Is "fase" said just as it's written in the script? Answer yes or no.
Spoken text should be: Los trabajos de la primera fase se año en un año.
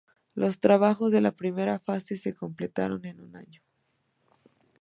yes